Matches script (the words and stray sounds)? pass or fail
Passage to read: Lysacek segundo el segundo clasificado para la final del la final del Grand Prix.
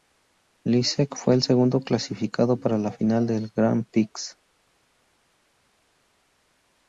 fail